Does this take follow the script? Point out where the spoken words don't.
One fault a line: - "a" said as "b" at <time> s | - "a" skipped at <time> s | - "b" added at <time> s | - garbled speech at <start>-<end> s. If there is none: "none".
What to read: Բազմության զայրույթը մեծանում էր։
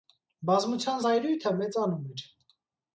none